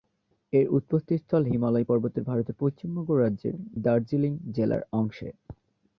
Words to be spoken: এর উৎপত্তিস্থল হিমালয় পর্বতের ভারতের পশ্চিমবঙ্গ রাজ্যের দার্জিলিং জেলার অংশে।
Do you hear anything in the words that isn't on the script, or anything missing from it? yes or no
no